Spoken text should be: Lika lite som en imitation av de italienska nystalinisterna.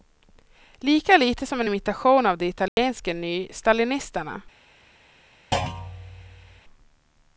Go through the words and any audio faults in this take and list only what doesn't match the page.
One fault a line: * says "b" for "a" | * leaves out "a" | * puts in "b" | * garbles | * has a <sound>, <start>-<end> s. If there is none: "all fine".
* has a dropout, 2.7-2.8 s
* has a thud, 5.5-6.6 s